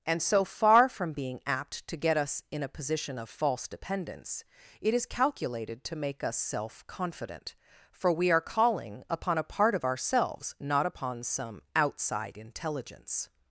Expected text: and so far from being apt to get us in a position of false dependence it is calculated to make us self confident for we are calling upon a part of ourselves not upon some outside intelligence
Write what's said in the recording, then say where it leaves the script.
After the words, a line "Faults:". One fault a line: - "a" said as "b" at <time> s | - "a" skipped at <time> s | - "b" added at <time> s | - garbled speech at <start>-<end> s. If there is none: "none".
and so far from being apt to get us in a position of false dependence it is calculated to make us self confident for we are calling upon a part of ourselves not upon some outside intelligence
Faults:
none